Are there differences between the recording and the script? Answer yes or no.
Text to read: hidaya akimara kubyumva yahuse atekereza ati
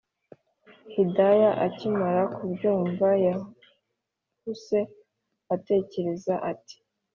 no